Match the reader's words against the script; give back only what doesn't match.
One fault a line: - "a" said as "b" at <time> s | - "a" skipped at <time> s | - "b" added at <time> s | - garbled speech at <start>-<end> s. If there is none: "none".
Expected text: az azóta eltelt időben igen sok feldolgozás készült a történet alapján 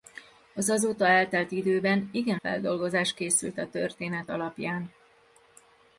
- "sok" skipped at 2.4 s